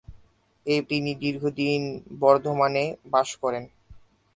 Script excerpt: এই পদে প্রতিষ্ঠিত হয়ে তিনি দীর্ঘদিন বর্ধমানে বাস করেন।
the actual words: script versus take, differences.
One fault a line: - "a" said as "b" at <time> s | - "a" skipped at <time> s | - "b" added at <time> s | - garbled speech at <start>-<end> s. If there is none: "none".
- "পদে প্রতিষ্ঠিত হয়ে" skipped at 0.8 s